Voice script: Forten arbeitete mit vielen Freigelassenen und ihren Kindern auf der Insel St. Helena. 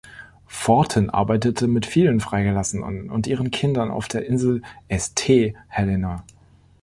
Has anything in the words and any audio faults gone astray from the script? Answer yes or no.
no